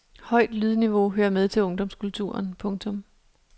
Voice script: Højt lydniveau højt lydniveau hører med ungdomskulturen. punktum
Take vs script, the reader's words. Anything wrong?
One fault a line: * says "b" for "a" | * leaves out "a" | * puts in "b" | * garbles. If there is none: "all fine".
* leaves out "højt lydniveau"
* puts in "til"